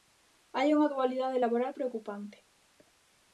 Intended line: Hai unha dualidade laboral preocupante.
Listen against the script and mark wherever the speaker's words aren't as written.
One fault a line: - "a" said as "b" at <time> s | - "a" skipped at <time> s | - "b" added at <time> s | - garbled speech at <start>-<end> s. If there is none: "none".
none